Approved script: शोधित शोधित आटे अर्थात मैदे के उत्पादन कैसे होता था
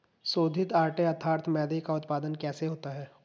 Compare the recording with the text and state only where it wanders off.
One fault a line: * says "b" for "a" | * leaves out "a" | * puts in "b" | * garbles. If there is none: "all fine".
* leaves out "शोधित"
* says "का" for "के"
* says "है" for "था"